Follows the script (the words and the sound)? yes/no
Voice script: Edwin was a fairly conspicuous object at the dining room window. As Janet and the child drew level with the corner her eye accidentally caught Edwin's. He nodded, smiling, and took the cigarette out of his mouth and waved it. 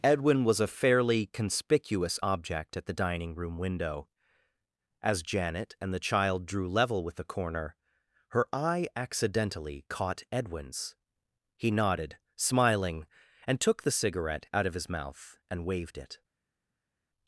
yes